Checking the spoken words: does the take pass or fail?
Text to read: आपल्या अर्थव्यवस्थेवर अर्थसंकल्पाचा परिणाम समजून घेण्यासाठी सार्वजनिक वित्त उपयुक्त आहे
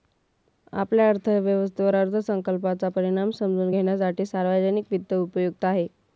pass